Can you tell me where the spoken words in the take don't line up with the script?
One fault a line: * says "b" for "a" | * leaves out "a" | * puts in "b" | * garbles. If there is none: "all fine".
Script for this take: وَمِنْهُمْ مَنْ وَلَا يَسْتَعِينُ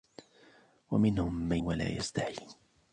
all fine